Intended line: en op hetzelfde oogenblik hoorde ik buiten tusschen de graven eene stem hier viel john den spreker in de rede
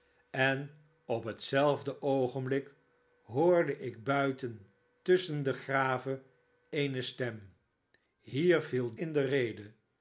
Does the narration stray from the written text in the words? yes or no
yes